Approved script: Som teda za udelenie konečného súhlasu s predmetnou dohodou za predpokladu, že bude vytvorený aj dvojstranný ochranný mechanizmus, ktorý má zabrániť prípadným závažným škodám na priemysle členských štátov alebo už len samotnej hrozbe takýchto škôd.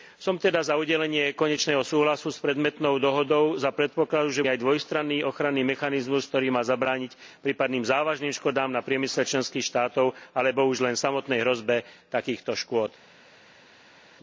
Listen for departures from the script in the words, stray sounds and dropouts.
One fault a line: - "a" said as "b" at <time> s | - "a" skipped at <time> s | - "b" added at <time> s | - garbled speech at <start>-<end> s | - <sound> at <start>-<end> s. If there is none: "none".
- "bude vytvorený" skipped at 4.5 s